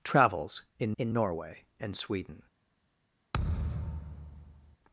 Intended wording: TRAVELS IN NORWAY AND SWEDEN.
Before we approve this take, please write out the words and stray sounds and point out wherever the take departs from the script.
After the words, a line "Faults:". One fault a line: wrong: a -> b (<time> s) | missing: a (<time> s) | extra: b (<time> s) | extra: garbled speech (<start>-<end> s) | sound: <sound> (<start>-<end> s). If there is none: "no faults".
TRAVELS IN IN NORWAY AND SWEDEN.
Faults:
extra: IN (1.0 s)
sound: thud (3.3-4.8 s)